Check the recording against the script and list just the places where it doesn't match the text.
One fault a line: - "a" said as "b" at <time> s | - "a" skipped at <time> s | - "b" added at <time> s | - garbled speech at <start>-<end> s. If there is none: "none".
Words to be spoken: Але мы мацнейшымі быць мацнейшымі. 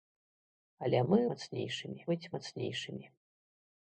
none